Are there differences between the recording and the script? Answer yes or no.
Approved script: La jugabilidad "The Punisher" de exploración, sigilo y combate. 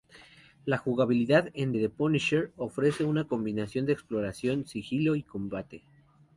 yes